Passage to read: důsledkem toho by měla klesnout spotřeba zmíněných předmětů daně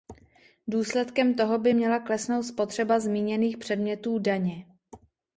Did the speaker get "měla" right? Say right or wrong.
right